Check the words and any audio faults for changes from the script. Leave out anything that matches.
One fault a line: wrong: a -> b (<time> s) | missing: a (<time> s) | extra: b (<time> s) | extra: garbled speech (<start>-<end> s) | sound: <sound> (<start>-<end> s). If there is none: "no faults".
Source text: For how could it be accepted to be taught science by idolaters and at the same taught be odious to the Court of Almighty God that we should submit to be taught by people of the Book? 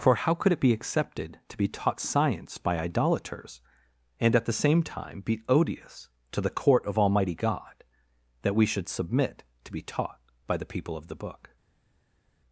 wrong: taught -> time (4.8 s)
extra: the (10.6 s)